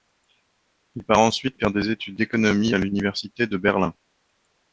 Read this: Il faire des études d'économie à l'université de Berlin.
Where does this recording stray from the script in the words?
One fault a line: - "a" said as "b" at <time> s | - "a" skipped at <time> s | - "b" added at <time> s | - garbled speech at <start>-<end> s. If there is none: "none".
- "part ensuite" added at 1.0 s